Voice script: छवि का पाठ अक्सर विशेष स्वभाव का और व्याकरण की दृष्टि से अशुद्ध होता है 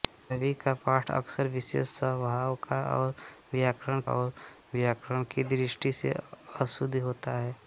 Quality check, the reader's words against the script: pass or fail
fail